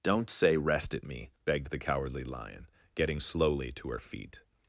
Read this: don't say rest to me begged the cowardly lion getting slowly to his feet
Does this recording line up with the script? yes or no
no